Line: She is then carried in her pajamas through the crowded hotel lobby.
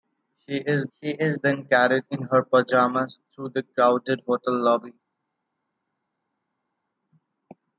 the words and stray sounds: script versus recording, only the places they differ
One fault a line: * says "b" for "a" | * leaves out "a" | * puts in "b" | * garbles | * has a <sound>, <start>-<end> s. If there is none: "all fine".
* puts in "she is"